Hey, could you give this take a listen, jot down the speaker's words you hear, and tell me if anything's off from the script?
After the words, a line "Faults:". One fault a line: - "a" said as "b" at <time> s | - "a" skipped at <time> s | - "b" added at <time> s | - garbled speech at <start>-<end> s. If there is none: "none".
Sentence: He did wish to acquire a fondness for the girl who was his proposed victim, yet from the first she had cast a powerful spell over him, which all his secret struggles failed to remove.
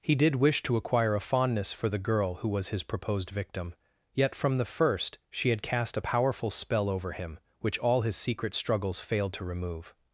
He did wish to acquire a fondness for the girl who was his proposed victim, yet from the first she had cast a powerful spell over him, which all his secret struggles failed to remove.
Faults:
none